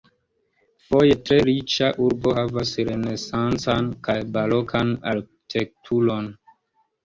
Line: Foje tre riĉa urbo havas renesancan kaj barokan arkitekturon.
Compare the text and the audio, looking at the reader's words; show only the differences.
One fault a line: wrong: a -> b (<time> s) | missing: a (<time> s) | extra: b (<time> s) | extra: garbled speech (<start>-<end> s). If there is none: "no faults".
no faults